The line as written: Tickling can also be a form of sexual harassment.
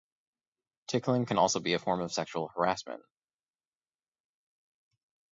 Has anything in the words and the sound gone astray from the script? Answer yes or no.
no